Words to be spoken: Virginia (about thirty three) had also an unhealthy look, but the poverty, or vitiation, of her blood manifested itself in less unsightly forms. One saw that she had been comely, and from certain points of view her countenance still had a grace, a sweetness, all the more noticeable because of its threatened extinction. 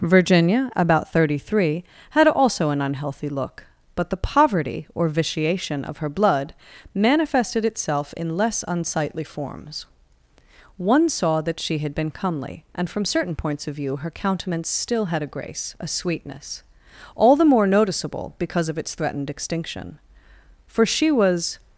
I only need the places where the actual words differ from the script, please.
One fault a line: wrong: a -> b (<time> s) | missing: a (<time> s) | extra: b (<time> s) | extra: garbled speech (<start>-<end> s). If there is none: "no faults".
extra: For she was (20.7 s)